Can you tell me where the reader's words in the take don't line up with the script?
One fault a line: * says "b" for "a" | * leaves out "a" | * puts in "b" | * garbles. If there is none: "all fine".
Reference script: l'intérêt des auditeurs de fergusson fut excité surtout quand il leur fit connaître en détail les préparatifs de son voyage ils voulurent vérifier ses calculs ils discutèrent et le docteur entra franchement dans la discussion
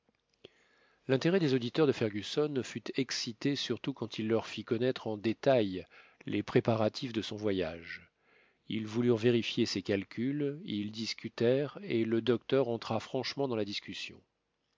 all fine